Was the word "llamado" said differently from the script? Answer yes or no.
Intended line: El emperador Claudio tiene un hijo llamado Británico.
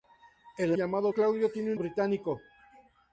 yes